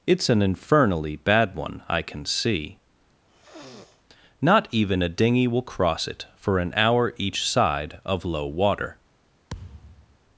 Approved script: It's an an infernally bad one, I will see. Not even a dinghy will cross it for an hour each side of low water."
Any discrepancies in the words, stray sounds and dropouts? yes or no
yes